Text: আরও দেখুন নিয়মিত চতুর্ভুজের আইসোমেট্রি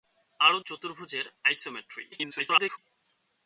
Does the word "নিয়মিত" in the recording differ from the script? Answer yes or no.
yes